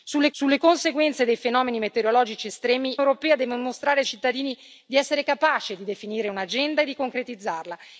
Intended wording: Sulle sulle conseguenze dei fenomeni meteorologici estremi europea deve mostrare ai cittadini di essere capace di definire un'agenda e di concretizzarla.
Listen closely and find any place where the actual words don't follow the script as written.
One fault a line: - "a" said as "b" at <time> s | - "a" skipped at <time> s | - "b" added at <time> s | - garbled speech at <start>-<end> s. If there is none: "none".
none